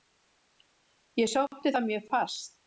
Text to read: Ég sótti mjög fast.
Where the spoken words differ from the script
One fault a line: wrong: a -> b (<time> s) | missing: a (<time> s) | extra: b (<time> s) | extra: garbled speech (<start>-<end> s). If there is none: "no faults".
extra: það (1.7 s)